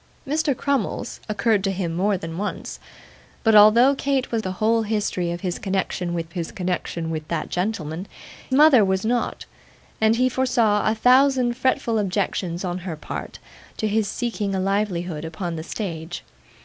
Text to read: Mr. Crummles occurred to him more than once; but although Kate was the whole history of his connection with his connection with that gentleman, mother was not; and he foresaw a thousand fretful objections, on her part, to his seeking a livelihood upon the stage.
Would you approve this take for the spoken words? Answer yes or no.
yes